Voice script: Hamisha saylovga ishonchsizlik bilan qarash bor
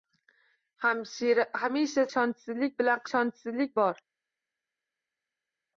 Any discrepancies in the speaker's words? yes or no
yes